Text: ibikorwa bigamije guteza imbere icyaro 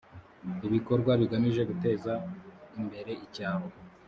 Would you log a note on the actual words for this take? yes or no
no